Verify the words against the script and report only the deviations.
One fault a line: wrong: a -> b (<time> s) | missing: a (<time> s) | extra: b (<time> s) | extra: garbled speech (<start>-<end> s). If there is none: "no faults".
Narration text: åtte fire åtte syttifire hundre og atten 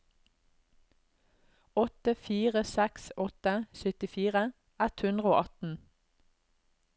extra: seks (2.7 s)
extra: ett (4.9 s)